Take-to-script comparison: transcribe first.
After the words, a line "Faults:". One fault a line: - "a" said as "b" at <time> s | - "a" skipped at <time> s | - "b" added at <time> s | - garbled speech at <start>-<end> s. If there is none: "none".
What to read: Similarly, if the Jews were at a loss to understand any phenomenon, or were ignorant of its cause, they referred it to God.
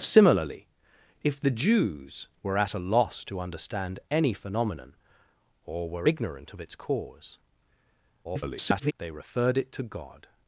Similarly, if the Jews were at a loss to understand any phenomenon, or were ignorant of its cause, [garbled] they referred it to God.
Faults:
- garbled speech at 8.2-8.9 s